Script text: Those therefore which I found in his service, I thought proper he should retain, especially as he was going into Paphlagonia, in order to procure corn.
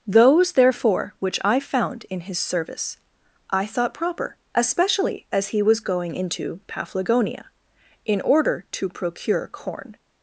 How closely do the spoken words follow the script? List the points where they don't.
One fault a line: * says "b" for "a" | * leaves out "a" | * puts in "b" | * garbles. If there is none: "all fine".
* leaves out "he should retain"